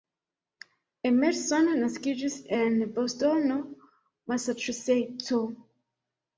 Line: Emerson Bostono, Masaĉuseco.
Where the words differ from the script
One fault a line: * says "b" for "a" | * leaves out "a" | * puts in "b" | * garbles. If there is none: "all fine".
* puts in "naskiĝis en"